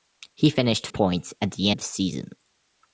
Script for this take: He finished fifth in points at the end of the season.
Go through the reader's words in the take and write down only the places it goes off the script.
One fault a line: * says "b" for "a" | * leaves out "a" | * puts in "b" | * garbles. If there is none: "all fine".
* leaves out "fifth in"
* leaves out "end"